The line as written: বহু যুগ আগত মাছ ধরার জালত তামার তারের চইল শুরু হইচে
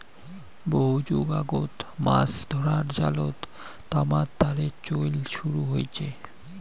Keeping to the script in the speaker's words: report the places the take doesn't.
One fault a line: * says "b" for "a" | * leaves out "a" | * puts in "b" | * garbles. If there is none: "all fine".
all fine